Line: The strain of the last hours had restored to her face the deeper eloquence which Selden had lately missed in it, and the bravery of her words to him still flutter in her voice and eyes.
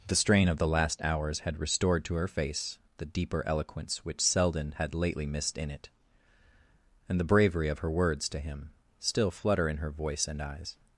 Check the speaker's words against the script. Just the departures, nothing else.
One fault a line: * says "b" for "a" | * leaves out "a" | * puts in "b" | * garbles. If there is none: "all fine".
all fine